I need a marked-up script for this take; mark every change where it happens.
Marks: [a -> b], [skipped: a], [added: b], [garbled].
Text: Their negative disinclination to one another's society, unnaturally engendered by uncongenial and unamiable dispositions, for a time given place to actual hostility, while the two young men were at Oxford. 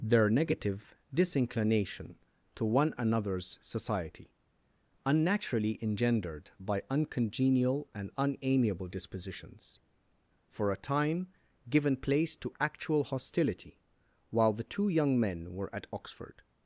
Their negative disinclination to one another's society, unnaturally engendered by uncongenial and unamiable dispositions, for a time given place to actual hostility, while the two young men were at Oxford.